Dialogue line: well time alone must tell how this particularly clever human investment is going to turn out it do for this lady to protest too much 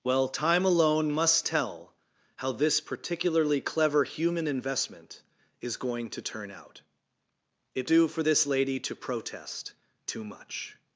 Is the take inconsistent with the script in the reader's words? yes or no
no